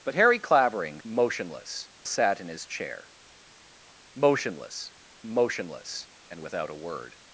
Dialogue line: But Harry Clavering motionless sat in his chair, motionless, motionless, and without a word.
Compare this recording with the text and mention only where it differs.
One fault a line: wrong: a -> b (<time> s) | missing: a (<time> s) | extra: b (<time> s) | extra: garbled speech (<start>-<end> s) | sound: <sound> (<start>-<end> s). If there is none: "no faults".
no faults